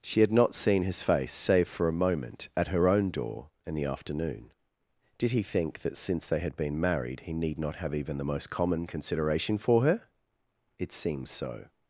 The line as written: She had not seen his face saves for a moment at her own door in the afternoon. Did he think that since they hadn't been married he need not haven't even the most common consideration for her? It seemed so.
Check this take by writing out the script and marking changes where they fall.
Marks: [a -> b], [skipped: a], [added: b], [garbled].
She had not seen his face [saves -> save] for a moment at her own door in the afternoon. Did he think that since they [hadn't -> had] been married he need not [haven't -> have] even the most common consideration for her? It seemed so.